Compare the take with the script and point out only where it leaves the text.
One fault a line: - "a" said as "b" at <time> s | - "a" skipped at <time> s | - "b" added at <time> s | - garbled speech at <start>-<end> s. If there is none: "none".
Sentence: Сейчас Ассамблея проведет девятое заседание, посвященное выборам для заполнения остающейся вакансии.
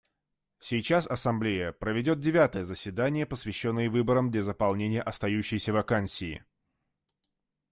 none